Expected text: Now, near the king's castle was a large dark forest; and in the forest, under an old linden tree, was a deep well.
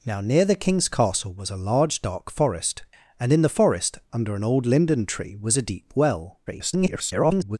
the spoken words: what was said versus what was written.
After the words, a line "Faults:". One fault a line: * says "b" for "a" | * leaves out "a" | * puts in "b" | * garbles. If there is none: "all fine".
Now, near the king's castle was a large dark forest; and in the forest, under an old linden tree, was a deep well. [garbled]
Faults:
* garbles